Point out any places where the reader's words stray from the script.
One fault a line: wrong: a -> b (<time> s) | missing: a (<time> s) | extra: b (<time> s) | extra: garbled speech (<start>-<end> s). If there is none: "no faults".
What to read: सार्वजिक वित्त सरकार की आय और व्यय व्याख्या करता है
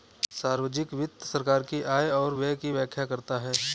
extra: की (2.6 s)